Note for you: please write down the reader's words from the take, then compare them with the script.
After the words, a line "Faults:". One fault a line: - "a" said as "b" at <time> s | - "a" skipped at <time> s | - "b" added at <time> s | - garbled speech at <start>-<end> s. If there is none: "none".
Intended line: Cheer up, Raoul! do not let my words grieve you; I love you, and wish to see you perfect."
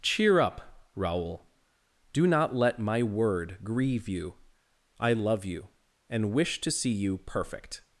Cheer up, Raoul! do not let my word grieve you; I love you, and wish to see you perfect."
Faults:
- "words" said as "word" at 3.0 s